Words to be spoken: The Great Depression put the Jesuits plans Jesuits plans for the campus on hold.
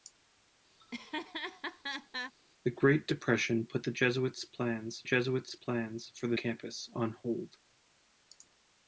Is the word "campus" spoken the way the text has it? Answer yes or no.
yes